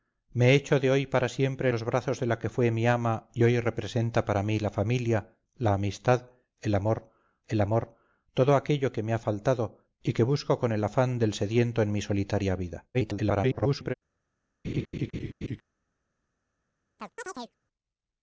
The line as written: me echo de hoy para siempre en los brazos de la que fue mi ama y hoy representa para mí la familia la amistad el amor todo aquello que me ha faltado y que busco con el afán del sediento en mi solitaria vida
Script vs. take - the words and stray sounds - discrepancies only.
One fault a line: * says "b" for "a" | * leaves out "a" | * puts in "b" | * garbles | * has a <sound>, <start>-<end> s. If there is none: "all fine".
* leaves out "en"
* puts in "el amor"
* garbles
* has a laugh, 14.6-15.6 s
* has a chirp, 17.0-17.6 s